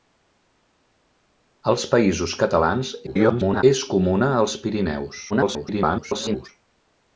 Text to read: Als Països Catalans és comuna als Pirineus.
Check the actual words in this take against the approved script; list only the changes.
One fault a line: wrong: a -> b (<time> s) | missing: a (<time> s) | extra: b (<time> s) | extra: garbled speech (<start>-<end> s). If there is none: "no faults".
extra: garbled speech (3.1-3.6 s)
extra: garbled speech (5.3-6.5 s)